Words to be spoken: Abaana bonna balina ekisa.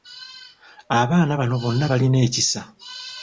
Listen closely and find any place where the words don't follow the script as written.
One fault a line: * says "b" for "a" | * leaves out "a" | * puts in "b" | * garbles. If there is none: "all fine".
* puts in "bano"